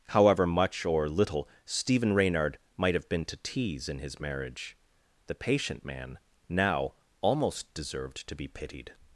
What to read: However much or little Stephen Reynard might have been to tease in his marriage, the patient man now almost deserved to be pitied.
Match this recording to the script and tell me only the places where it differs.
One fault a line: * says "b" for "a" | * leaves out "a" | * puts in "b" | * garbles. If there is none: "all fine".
all fine